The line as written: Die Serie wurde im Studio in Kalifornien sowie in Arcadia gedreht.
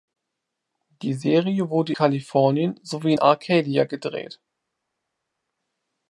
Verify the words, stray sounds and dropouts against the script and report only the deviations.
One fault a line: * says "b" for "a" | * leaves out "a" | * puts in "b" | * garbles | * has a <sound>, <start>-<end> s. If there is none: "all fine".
* leaves out "im Studio in"
* leaves out "in"